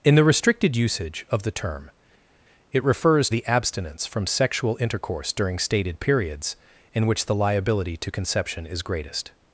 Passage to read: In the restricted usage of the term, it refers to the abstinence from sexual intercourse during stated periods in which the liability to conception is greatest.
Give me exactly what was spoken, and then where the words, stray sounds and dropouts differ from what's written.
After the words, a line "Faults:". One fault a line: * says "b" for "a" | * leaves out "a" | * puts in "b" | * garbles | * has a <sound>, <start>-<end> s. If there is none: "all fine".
In the restricted usage of the term, it refers the abstinence from sexual intercourse during stated periods in which the liability to conception is greatest.
Faults:
* leaves out "to"